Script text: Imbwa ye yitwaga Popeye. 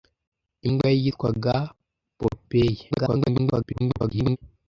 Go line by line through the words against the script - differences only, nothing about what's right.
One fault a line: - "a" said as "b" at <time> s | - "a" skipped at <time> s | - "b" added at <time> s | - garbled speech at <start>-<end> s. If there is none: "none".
- garbled speech at 2.9-4.4 s